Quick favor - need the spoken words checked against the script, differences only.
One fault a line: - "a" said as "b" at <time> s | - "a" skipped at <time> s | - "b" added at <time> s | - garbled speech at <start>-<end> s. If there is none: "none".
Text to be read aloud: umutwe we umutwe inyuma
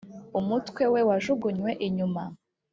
- "umutwe" said as "wajugunywe" at 1.1 s